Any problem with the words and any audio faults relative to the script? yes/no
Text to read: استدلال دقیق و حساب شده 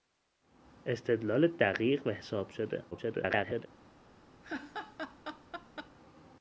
yes